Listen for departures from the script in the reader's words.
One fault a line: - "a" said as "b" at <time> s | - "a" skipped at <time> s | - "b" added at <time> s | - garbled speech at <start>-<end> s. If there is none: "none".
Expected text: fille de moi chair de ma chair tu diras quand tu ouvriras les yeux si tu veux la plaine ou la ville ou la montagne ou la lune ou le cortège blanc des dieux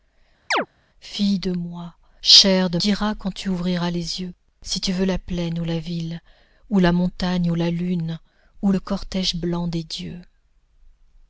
- "ma chair tu" skipped at 2.8 s